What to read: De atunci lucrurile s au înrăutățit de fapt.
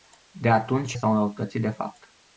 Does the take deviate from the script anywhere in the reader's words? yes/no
yes